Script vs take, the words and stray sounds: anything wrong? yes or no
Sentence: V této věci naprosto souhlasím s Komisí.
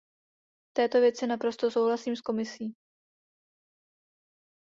no